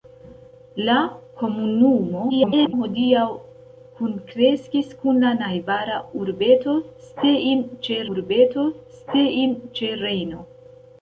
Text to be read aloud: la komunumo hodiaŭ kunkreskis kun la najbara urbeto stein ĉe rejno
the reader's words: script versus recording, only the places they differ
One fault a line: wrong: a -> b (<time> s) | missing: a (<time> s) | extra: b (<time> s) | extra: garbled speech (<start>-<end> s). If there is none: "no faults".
extra: garbled speech (2.3-2.7 s)
extra: urbeto stein ĉe (8.1 s)